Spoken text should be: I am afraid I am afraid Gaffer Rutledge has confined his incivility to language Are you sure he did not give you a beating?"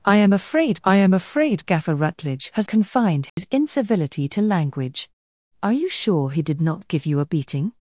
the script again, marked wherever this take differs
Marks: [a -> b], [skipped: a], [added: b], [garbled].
I am afraid I am afraid Gaffer Rutledge has confined his incivility to language Are you sure he did not give you a beating?"